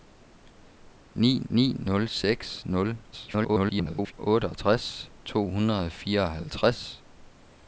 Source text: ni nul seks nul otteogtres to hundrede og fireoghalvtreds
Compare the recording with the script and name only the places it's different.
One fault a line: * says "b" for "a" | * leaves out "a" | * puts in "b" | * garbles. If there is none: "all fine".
* puts in "ni"
* garbles